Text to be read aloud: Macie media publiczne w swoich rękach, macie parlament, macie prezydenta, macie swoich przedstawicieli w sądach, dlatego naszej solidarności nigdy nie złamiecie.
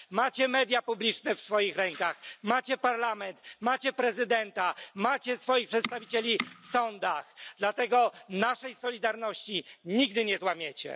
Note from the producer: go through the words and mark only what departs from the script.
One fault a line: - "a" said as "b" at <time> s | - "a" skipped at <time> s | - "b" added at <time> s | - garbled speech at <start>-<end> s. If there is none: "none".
none